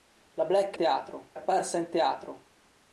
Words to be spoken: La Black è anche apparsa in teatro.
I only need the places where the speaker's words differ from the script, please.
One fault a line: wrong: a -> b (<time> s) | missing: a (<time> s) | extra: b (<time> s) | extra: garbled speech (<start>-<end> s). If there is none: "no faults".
wrong: anche -> teatro (0.7 s)